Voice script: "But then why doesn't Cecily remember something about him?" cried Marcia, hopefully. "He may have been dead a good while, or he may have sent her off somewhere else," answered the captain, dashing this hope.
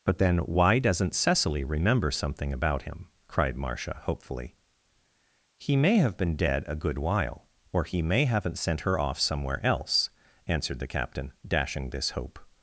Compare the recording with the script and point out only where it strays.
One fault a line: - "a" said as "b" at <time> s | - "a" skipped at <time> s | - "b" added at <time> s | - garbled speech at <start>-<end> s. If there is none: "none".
- "have" said as "haven't" at 8.2 s